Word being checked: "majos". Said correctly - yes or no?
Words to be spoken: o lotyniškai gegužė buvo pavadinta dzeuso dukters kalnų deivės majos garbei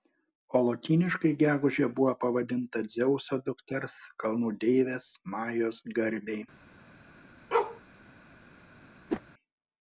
yes